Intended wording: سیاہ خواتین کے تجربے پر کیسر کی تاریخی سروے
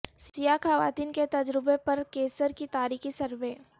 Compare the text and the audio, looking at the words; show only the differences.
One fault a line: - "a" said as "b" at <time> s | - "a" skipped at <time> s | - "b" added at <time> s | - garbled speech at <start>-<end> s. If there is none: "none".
none